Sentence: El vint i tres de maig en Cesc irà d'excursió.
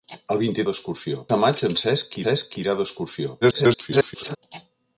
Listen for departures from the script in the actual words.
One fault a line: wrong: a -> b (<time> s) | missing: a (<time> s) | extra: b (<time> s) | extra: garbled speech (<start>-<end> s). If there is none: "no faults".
wrong: tres -> d'excursió (0.7 s)
extra: Cesc (2.2 s)
extra: garbled speech (3.4-4.4 s)